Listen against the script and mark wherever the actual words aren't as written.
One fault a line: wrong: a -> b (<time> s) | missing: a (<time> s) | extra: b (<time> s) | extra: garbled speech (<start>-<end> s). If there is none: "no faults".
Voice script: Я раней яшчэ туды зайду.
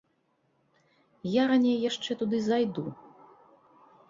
no faults